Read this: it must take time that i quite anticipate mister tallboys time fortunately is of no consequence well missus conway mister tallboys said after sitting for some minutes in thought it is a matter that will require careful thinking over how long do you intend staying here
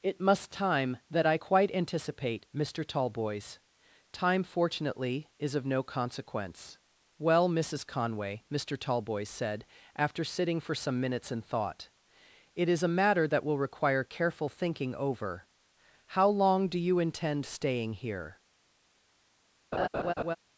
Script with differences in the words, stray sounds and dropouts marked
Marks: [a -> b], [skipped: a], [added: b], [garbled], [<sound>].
it must [skipped: take] time that i quite anticipate mister tallboys time fortunately is of no consequence well missus conway mister tallboys said after sitting for some minutes in thought it is a matter that will require careful thinking over how long do you intend staying here [laugh]